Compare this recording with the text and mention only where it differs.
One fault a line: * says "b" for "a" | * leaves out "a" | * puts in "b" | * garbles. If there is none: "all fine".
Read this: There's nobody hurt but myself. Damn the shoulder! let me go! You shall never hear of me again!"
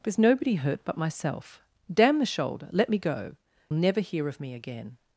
* leaves out "You shall"